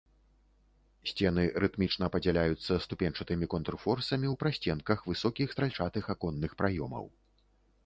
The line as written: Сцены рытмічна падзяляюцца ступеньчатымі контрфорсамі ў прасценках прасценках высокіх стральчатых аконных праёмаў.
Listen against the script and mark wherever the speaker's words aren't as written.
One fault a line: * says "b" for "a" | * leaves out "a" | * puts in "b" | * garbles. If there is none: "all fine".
* leaves out "прасценках"